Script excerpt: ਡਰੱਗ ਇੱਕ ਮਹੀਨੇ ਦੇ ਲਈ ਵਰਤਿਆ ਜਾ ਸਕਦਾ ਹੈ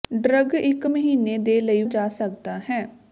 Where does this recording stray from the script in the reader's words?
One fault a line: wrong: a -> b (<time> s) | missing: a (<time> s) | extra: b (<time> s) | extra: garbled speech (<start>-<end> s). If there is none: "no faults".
missing: ਵਰਤਿਆ (1.8 s)